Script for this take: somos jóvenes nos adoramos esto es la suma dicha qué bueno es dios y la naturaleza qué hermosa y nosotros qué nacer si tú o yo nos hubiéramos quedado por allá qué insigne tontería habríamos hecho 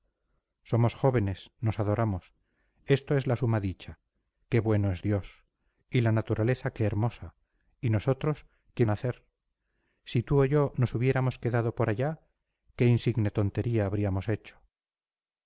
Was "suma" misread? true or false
false